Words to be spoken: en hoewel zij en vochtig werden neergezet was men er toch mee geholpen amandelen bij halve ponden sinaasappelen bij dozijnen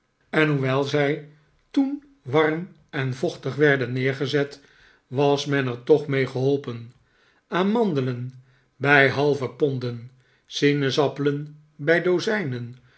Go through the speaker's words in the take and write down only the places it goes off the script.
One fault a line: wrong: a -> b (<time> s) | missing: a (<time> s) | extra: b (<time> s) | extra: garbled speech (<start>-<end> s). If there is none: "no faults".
extra: toen warm (1.7 s)